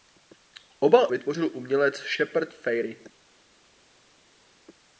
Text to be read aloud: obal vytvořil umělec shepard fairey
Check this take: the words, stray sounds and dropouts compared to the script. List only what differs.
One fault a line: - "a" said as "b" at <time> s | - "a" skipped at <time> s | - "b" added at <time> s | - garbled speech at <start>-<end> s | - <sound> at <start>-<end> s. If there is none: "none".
none